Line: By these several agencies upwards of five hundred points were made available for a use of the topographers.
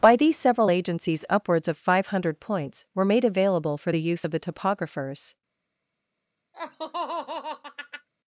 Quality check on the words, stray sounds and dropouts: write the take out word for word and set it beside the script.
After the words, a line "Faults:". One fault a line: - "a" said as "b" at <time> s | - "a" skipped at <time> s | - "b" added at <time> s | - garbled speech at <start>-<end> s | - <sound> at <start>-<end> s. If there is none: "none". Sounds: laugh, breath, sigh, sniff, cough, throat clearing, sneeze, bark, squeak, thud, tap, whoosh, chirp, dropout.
By these several agencies upwards of five hundred points were made available for the use of the topographers.
Faults:
- "a" said as "the" at 3.9 s
- laugh at 6.5-8.1 s